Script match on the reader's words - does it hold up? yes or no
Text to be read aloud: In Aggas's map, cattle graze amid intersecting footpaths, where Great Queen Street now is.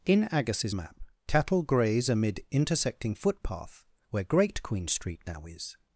no